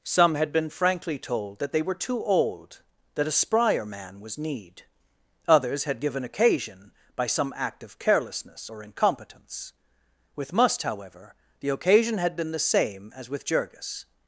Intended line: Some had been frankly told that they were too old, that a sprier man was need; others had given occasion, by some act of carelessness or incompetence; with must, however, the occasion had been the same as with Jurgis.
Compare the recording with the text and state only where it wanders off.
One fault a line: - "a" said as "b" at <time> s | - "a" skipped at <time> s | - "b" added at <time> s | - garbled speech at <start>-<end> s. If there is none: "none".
none